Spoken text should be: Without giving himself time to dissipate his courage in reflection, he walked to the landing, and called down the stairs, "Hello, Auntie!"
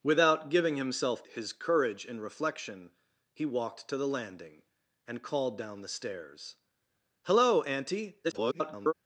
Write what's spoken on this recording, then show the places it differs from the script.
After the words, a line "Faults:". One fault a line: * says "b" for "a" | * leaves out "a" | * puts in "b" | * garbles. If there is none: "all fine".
Without giving himself his courage in reflection, he walked to the landing, and called down the stairs, "Hello, Auntie!" [garbled]
Faults:
* leaves out "time to dissipate"
* garbles